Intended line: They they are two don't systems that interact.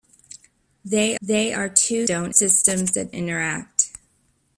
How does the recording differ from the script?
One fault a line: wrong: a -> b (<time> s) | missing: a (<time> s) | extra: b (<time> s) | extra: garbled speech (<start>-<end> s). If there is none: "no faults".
no faults